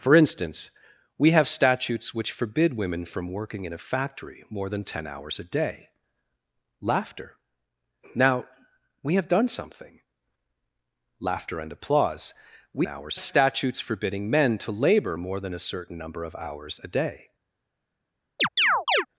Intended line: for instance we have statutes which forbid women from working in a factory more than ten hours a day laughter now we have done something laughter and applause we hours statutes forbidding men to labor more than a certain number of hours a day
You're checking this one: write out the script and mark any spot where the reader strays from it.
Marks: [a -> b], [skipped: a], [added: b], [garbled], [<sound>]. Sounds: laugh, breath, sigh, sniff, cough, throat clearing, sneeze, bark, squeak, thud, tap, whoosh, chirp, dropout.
for instance we have statutes which forbid women from working in a factory more than ten hours a day laughter now we have done something laughter and applause we hours statutes forbidding men to labor more than a certain number of hours a day [chirp]